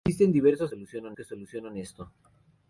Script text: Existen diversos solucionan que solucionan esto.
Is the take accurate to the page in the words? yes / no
yes